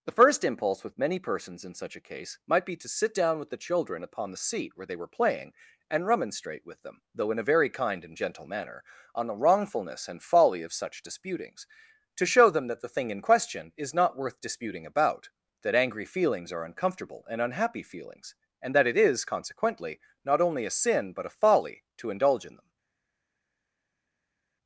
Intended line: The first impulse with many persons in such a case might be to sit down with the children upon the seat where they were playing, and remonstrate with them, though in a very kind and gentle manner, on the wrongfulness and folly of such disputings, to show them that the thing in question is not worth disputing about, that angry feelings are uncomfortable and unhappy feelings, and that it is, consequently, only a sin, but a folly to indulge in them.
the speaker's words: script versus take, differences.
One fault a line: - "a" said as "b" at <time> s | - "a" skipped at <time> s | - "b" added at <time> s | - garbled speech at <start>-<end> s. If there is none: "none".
- "not" added at 20.2 s